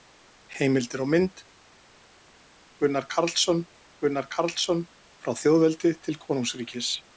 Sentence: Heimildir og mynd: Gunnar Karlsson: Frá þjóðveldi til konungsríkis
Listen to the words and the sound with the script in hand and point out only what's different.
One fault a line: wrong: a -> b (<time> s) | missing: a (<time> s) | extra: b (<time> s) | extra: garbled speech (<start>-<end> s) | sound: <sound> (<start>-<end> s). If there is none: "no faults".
extra: Gunnar Karlsson (4.1 s)